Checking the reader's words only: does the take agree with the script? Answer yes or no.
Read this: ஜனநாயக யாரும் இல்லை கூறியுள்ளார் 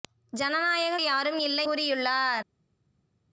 yes